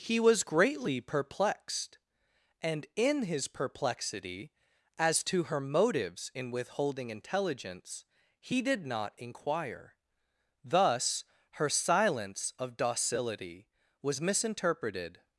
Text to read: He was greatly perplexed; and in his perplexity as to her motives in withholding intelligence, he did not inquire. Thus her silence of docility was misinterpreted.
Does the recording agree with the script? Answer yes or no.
yes